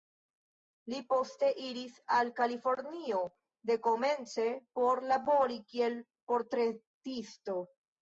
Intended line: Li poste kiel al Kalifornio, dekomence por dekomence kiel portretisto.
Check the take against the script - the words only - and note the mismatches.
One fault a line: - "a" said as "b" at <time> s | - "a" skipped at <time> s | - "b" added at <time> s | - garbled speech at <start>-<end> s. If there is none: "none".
- "kiel" said as "iris" at 1.6 s
- "dekomence" said as "labori" at 5.2 s